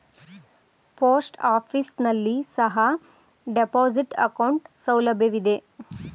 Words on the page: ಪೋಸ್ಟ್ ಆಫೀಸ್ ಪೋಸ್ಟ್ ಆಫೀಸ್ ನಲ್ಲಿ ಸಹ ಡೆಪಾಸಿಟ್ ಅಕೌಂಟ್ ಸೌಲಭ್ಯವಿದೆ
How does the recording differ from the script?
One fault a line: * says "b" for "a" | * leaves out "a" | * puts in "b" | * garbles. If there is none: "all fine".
* leaves out "ಪೋಸ್ಟ್ ಆಫೀಸ್"